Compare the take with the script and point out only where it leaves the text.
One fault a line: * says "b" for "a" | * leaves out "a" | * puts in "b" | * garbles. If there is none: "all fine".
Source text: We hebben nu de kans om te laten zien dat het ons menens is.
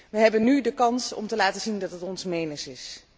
all fine